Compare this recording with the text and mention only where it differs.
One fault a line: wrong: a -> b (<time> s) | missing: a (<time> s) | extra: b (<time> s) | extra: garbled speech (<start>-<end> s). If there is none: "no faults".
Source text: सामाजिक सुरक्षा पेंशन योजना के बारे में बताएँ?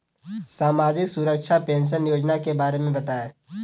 no faults